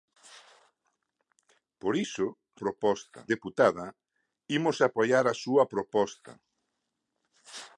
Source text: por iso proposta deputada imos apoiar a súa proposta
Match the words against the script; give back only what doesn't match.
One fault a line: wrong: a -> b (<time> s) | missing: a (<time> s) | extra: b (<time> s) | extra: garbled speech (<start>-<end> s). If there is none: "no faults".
no faults